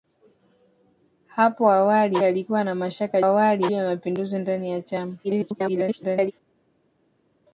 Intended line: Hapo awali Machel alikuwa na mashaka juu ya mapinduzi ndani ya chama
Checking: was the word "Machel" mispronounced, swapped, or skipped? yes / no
yes